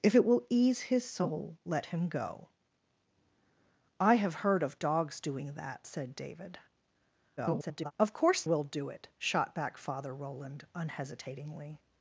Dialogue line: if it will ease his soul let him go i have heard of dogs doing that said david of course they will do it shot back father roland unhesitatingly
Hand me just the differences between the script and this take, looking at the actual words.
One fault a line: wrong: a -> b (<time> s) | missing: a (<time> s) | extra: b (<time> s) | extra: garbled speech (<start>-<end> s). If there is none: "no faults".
extra: garbled speech (7.4-7.9 s)
missing: they (8.4 s)